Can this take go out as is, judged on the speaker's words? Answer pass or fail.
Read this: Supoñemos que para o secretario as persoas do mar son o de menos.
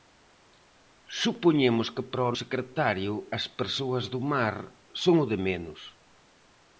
pass